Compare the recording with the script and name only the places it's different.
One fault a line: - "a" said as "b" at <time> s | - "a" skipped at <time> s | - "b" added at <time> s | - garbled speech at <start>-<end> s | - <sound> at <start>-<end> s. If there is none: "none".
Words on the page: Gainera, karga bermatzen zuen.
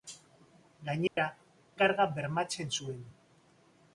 - dropout at 1.1-1.2 s